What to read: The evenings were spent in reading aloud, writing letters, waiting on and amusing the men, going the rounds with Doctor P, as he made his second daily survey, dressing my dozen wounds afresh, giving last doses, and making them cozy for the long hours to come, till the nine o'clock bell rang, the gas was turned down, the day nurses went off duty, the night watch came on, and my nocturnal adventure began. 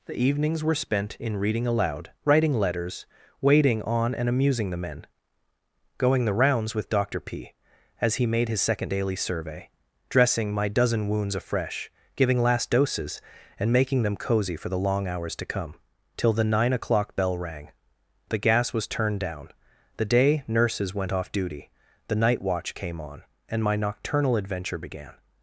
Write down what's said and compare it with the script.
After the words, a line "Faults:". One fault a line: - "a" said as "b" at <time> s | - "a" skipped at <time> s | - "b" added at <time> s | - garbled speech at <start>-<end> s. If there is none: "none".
The evenings were spent in reading aloud, writing letters, waiting on and amusing the men, going the rounds with Doctor P, as he made his second daily survey, dressing my dozen wounds afresh, giving last doses, and making them cozy for the long hours to come, till the nine o'clock bell rang, the gas was turned down, the day nurses went off duty, the night watch came on, and my nocturnal adventure began.
Faults:
none